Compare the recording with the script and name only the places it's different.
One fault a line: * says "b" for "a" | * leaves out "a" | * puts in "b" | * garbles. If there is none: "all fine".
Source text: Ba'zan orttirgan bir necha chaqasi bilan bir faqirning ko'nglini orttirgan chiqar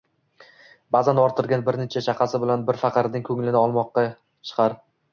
* says "olmoqqa" for "orttirgan"